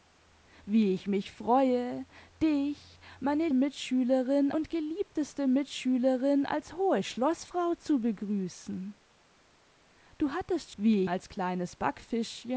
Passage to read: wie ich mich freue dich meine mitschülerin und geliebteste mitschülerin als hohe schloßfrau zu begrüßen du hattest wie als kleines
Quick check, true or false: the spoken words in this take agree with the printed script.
true